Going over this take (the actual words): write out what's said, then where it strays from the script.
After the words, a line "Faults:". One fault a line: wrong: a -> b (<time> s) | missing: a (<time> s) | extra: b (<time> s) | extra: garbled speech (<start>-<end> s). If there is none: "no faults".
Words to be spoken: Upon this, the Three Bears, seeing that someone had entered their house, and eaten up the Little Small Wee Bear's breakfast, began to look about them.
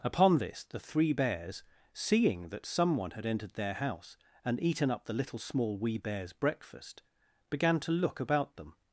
Upon this, the Three Bears, seeing that someone had entered their house, and eaten up the Little Small Wee Bear's breakfast, began to look about them.
Faults:
no faults